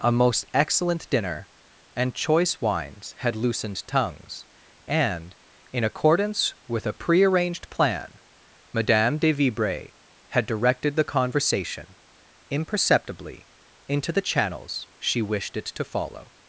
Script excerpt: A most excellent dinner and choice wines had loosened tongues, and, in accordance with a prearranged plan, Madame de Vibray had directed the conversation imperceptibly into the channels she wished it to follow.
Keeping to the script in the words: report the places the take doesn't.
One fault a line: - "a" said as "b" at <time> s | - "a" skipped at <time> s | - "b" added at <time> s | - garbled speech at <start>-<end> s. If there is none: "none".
none